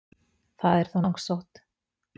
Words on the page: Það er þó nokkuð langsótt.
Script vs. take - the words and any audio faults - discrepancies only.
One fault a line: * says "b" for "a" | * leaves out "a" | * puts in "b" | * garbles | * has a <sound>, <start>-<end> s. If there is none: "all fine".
* leaves out "nokkuð"